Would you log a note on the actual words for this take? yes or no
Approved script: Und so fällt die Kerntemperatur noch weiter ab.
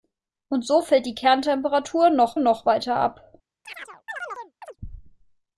yes